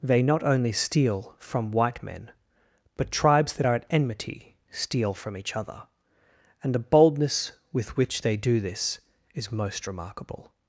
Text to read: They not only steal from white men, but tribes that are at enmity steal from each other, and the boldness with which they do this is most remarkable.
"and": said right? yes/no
yes